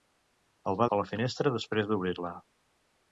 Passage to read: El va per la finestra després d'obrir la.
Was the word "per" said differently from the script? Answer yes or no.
no